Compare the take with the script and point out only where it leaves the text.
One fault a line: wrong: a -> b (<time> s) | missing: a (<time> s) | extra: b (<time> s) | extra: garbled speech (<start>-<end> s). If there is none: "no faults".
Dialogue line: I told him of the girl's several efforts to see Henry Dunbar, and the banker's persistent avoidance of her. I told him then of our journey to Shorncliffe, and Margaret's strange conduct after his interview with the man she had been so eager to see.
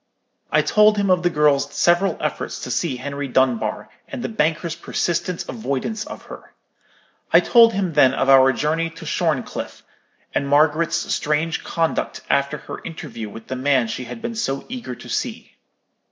wrong: his -> her (12.6 s)